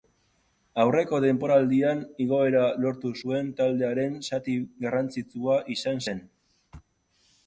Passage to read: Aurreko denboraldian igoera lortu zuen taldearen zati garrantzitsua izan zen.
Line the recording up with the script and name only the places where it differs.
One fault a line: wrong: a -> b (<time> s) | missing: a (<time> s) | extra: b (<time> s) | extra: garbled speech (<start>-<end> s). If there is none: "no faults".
no faults